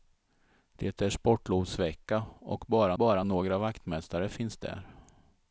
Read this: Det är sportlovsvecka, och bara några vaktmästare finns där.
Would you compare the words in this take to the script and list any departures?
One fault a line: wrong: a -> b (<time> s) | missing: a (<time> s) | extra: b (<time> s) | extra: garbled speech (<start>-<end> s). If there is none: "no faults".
extra: bara (3.0 s)